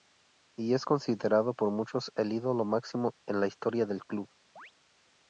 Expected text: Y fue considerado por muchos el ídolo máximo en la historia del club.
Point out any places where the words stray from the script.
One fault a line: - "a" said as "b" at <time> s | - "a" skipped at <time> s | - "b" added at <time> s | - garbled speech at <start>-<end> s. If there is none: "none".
- "fue" said as "es" at 0.7 s